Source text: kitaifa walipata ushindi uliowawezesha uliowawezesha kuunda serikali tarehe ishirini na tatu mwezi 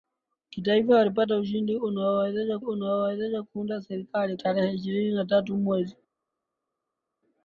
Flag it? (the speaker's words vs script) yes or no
no